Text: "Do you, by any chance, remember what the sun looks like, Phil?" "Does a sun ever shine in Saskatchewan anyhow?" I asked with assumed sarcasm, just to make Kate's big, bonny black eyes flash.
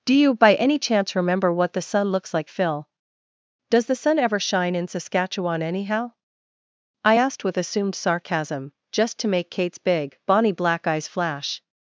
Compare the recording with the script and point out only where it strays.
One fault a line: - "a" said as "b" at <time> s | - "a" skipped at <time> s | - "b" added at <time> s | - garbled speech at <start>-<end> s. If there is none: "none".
- "a" said as "the" at 3.9 s